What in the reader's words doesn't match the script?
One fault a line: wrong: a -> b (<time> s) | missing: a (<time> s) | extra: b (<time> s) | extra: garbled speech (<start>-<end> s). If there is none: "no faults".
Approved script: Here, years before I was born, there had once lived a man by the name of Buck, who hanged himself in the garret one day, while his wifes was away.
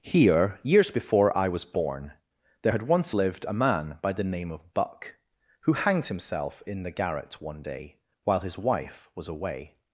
wrong: wifes -> wife (8.6 s)